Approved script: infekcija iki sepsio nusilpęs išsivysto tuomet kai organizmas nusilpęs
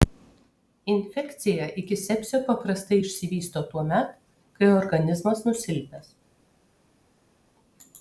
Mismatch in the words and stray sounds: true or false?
true